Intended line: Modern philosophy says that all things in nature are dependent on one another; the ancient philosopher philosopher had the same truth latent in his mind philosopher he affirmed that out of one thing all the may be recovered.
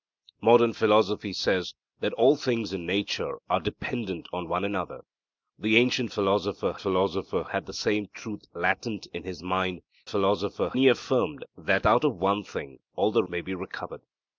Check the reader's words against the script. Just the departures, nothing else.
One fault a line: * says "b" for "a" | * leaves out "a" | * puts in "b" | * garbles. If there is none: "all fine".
all fine